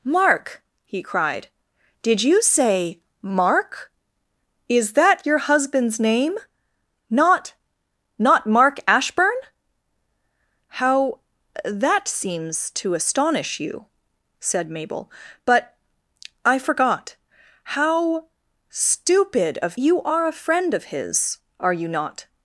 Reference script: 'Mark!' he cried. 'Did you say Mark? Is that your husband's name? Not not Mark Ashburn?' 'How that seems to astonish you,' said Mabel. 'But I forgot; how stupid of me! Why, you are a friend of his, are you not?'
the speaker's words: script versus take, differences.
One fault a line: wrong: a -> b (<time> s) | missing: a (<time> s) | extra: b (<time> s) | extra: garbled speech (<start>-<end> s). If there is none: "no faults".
missing: me Why (19.8 s)